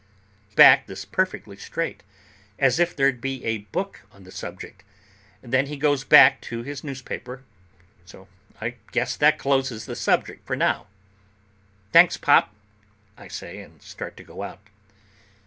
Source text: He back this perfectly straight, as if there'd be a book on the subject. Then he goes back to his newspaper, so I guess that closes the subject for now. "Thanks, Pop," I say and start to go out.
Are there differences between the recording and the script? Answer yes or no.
no